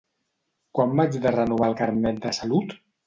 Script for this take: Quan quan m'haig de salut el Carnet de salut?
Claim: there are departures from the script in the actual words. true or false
true